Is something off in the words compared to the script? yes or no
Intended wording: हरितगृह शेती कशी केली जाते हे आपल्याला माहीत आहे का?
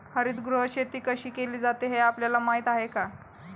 no